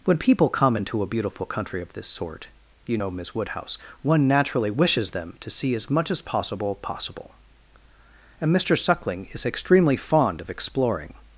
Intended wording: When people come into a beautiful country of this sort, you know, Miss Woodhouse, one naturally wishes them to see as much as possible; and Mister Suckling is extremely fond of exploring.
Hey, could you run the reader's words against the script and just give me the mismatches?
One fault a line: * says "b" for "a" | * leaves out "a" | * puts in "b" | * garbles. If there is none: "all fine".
* puts in "possible"